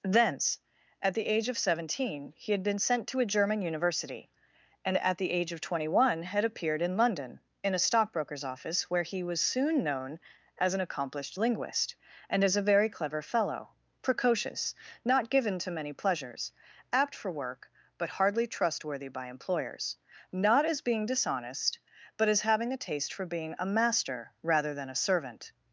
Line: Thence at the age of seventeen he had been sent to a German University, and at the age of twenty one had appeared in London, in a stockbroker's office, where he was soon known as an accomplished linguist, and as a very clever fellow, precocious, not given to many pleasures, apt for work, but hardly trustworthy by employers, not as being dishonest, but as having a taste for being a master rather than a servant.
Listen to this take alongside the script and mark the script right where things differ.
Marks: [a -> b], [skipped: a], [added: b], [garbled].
Thence at the age of seventeen he had been sent to a German University, and at the age of twenty one had appeared in London, in a stockbroker's office, where he was soon known as an accomplished linguist, and as a very clever fellow, precocious, not given to many pleasures, apt for work, but hardly trustworthy by employers, not as being dishonest, but as having a taste for being a master rather than a servant.